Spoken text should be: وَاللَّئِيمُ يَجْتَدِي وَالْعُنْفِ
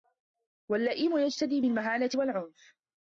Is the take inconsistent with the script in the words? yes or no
yes